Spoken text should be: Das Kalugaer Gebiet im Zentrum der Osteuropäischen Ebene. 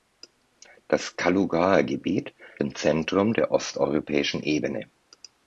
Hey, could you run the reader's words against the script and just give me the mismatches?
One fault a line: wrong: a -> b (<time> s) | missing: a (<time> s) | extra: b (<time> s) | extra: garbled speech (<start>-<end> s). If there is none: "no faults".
no faults